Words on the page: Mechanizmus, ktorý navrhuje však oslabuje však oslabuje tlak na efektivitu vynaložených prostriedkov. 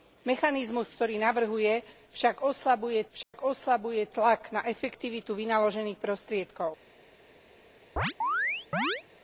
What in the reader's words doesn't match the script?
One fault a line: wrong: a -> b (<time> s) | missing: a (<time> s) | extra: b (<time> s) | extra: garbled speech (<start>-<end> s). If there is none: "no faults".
no faults